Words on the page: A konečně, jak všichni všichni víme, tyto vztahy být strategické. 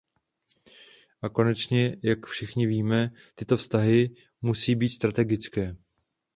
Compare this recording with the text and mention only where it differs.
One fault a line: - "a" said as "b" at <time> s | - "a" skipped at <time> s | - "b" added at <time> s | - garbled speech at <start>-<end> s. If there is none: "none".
- "všichni" skipped at 2.7 s
- "musí" added at 4.4 s